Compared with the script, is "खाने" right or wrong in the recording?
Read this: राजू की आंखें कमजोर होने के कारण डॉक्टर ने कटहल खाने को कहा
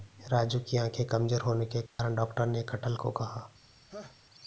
wrong